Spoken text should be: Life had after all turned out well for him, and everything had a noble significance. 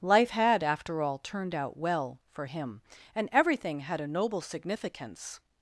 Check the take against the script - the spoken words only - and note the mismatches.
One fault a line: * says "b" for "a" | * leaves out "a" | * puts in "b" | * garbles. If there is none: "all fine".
all fine